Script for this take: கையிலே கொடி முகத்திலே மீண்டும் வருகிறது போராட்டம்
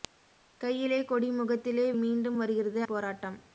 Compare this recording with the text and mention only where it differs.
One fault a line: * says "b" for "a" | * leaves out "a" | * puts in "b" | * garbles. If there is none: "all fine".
all fine